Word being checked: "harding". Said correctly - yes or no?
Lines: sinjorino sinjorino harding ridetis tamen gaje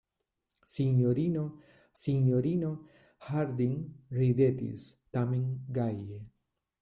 yes